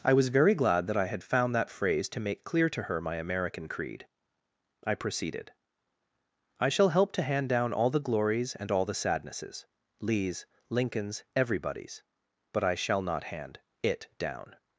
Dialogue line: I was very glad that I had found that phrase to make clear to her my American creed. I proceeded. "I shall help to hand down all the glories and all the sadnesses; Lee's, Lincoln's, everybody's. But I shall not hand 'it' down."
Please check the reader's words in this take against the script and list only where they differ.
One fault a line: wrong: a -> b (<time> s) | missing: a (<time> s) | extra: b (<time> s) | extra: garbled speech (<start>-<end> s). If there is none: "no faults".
no faults